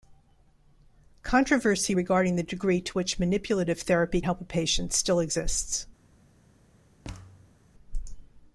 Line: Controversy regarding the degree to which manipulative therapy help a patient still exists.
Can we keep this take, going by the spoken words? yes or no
yes